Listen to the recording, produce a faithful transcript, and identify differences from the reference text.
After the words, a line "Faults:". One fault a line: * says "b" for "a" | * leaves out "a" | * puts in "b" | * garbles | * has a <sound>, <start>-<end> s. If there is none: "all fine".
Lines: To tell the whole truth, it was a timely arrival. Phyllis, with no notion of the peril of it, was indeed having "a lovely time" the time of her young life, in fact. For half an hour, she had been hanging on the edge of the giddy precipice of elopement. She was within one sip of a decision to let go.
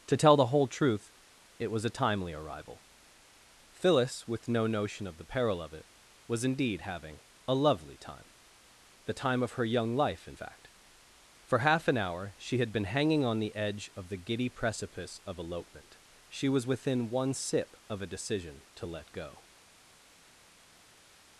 To tell the whole truth, it was a timely arrival. Phyllis, with no notion of the peril of it, was indeed having "a lovely time" the time of her young life, in fact. For half an hour, she had been hanging on the edge of the giddy precipice of elopement. She was within one sip of a decision to let go.
Faults:
all fine